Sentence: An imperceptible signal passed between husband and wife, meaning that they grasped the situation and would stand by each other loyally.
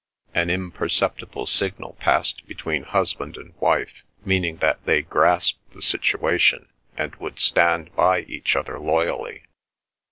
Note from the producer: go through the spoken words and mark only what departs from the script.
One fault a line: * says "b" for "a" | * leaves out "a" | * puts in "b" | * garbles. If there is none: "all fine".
all fine